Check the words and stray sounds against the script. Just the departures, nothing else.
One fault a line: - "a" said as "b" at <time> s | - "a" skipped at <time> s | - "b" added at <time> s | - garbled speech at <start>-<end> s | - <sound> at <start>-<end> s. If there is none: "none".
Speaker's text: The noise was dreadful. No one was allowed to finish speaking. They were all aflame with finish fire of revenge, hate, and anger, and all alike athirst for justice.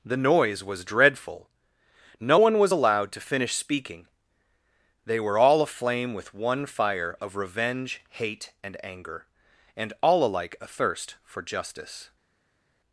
- "finish" said as "one" at 6.3 s